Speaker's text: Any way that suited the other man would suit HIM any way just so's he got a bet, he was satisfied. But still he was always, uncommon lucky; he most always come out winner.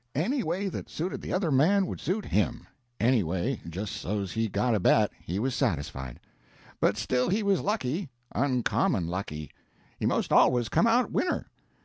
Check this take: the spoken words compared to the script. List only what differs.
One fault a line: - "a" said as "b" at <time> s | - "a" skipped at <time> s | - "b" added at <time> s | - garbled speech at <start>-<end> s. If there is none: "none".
- "always" said as "lucky" at 7.6 s